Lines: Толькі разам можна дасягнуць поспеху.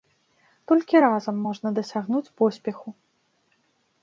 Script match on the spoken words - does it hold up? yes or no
yes